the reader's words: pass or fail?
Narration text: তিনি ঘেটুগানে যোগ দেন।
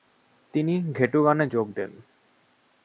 pass